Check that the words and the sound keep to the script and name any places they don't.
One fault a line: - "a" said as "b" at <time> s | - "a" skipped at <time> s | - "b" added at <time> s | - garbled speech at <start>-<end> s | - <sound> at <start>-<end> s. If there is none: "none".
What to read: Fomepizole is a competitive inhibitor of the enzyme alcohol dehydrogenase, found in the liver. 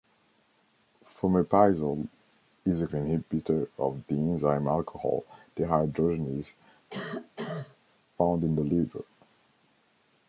- "competitive" skipped at 2.9 s
- cough at 6.9-7.8 s